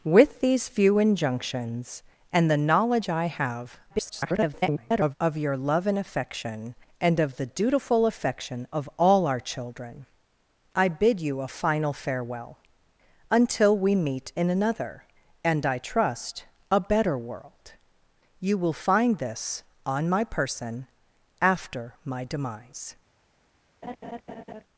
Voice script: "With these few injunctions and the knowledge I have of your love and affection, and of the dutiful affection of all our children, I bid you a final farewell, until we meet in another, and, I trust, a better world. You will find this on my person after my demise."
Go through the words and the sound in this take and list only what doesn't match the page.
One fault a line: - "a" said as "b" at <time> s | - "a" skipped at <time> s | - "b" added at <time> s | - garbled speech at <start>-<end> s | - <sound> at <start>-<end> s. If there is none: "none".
- garbled speech at 3.9-5.1 s
- laugh at 23.8-24.6 s